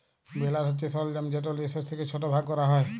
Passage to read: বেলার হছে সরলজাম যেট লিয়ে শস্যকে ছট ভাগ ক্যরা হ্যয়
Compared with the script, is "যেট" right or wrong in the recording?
right